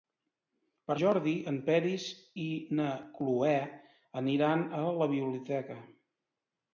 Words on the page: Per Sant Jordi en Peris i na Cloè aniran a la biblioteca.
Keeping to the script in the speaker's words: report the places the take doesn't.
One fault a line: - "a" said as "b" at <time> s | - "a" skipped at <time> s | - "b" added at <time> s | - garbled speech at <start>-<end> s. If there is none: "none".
- "Sant" skipped at 0.9 s